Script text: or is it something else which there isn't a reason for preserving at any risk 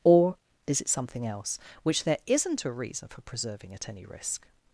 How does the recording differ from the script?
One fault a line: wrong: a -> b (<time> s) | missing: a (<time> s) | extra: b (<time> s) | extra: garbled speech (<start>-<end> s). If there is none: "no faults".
no faults